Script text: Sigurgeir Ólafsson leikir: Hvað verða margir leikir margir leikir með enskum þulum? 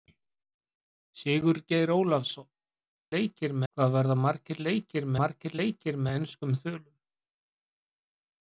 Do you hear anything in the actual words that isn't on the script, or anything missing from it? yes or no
no